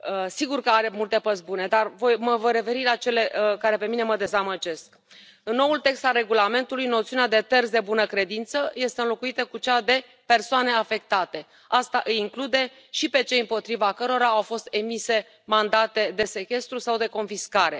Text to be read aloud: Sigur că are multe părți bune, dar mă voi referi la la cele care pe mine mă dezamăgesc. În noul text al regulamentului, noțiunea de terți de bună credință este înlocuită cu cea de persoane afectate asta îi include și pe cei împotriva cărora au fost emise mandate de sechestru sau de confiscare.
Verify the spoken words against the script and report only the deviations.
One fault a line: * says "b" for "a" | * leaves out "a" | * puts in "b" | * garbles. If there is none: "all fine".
* leaves out "la"